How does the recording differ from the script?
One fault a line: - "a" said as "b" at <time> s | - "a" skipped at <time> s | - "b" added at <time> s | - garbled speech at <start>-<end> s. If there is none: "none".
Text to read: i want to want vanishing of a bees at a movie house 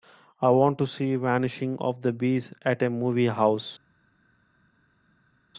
- "want" said as "see" at 0.9 s
- "a" said as "the" at 2.0 s